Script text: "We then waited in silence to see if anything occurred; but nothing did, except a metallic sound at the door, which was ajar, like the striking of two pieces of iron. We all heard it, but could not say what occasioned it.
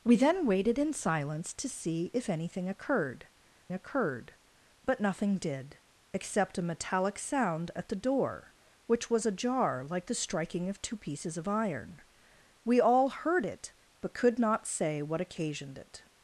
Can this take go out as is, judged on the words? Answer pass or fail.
fail